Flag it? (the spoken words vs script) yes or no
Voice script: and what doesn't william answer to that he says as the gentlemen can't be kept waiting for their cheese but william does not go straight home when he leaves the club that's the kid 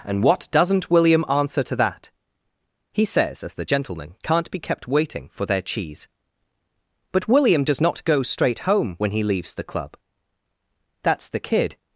no